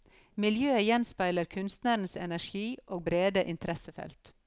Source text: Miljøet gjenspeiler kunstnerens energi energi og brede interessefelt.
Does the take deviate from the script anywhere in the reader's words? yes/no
yes